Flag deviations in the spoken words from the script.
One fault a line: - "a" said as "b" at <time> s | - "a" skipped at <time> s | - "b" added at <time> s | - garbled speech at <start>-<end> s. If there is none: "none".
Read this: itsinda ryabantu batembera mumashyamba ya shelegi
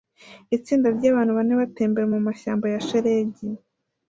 - "bane" added at 1.4 s